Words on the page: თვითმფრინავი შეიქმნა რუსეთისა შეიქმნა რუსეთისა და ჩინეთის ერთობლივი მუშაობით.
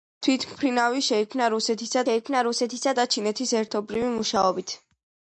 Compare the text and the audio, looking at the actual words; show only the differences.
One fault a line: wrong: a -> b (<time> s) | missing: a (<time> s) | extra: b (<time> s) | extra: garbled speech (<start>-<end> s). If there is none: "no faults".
no faults